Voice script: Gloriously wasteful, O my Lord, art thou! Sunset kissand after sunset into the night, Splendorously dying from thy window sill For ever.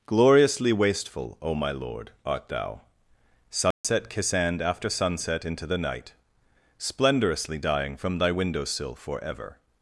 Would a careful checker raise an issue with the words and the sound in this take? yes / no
yes